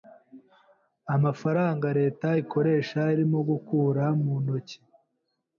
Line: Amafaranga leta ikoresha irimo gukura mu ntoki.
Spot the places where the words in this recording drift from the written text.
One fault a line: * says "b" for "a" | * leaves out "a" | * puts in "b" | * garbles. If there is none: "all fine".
all fine